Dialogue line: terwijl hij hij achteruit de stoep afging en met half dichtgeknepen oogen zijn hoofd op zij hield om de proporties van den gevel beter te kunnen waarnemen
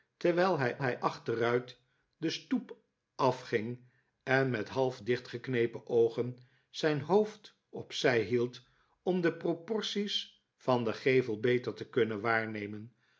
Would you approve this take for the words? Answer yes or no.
yes